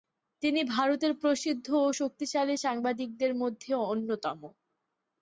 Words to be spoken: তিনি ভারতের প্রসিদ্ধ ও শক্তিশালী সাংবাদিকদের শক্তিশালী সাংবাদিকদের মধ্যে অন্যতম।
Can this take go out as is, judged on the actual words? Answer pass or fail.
fail